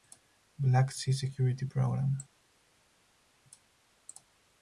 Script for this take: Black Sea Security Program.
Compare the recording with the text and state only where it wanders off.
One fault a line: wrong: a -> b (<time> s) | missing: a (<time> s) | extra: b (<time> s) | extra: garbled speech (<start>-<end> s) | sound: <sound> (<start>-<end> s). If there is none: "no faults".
no faults